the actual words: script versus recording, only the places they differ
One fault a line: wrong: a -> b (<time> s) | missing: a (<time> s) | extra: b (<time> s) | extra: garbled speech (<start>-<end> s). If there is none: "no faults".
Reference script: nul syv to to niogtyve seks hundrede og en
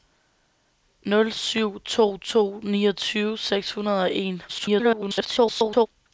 extra: garbled speech (4.5-5.9 s)